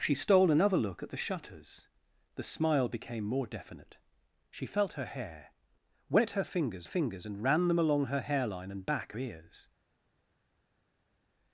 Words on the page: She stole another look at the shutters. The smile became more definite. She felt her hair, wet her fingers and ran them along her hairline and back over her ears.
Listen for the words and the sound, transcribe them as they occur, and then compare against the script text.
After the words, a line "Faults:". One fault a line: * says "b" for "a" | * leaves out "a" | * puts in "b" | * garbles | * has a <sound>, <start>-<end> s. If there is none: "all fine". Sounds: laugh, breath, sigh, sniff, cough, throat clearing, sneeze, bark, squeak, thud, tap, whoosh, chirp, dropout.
She stole another look at the shutters. The smile became more definite. She felt her hair, wet her fingers fingers and ran them along her hairline and back ears.
Faults:
* puts in "fingers"
* leaves out "over her"